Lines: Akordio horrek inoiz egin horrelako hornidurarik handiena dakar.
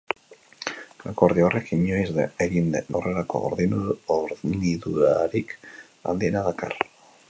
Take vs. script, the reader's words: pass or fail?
pass